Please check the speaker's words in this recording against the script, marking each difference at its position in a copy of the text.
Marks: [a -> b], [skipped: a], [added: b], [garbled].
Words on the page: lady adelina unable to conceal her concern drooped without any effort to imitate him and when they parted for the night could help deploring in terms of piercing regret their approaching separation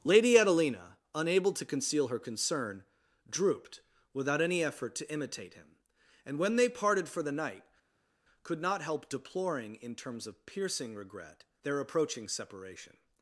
lady adelina unable to conceal her concern drooped without any effort to imitate him and when they parted for the night could [added: not] help deploring in terms of piercing regret their approaching separation